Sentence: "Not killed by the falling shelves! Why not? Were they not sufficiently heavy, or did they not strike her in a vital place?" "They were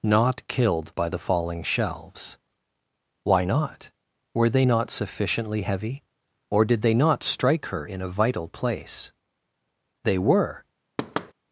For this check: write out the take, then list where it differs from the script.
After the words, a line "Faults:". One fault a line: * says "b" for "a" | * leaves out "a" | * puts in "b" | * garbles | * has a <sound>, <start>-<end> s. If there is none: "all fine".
"Not killed by the falling shelves! Why not? Were they not sufficiently heavy, or did they not strike her in a vital place?" "They were
Faults:
* has a thud, 11.0-11.3 s